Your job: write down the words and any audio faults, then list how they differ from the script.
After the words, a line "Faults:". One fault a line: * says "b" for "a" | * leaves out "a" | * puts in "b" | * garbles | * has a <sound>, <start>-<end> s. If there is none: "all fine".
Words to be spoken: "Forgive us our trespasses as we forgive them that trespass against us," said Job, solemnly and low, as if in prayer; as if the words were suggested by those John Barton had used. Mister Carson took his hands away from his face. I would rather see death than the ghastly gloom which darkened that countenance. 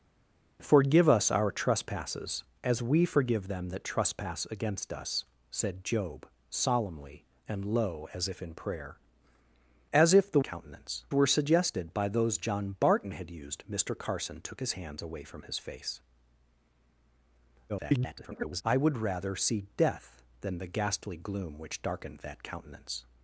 "Forgive us our trespasses as we forgive them that trespass against us," said Job, solemnly and low, as if in prayer; as if the countenance were suggested by those John Barton had used. Mister Carson took his hands away from his face. [garbled] I would rather see death than the ghastly gloom which darkened that countenance.
Faults:
* says "countenance" for "words"
* garbles